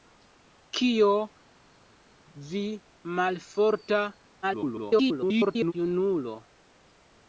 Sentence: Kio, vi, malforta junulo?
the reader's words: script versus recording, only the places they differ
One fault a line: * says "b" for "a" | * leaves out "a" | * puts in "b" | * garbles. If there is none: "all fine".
* garbles